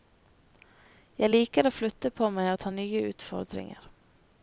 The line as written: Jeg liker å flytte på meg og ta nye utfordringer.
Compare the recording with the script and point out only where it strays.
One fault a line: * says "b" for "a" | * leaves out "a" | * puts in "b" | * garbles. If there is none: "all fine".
all fine